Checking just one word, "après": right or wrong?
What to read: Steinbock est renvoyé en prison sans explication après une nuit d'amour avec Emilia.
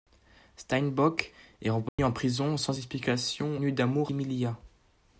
wrong